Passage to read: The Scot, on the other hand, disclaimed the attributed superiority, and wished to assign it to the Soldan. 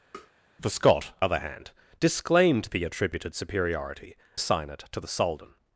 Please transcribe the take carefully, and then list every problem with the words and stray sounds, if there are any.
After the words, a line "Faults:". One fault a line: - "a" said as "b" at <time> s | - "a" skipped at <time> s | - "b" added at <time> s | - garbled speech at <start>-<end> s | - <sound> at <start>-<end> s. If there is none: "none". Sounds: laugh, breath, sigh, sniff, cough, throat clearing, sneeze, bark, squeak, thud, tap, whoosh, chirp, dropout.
The Scot, other hand, disclaimed the attributed superiority, assign it to the Soldan.
Faults:
- tap at 0.1-0.3 s
- "on the" skipped at 1.1 s
- "and wished to" skipped at 4.2 s